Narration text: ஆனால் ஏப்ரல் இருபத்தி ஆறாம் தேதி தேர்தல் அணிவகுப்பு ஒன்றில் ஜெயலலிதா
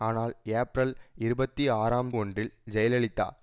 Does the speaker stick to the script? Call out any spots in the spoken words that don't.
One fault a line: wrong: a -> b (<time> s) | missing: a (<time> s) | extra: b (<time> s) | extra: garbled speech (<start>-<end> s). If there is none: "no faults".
missing: தேதி தேர்தல் அணிவகுப்பு (2.1 s)